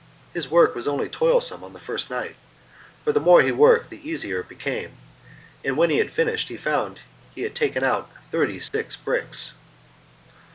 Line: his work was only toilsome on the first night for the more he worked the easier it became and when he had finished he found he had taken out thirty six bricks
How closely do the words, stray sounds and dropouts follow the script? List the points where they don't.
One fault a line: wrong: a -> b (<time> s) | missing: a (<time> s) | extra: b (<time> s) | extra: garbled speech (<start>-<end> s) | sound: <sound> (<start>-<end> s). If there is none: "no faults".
sound: dropout (8.7-8.7 s)